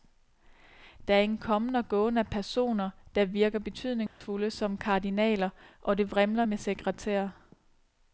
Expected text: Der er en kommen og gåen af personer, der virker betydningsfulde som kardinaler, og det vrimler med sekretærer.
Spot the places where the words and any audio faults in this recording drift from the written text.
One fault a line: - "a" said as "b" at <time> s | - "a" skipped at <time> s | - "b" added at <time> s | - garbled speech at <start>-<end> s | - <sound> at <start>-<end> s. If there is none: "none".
- dropout at 4.1-4.2 s